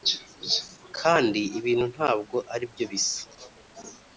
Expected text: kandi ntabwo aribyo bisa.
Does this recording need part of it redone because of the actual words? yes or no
yes